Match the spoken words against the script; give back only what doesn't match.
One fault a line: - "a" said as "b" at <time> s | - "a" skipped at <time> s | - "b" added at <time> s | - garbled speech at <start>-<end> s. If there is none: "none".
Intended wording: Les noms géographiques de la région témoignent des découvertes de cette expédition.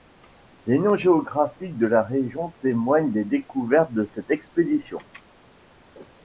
none